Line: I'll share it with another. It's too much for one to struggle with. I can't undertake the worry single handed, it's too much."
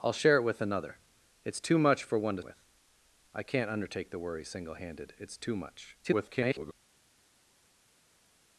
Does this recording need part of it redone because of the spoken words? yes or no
yes